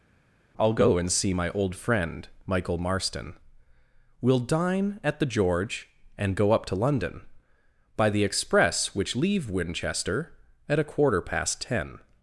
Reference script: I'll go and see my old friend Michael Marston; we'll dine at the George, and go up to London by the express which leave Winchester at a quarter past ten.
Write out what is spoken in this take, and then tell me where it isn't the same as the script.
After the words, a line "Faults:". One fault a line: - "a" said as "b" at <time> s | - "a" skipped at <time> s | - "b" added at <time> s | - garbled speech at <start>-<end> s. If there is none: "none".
I'll go and see my old friend Michael Marston; we'll dine at the George, and go up to London by the express which leave Winchester at a quarter past ten.
Faults:
none